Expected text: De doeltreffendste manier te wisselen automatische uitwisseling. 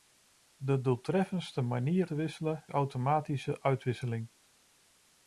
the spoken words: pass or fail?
pass